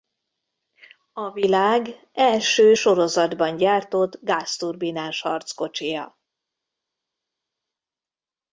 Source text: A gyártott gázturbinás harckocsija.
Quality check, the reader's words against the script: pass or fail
fail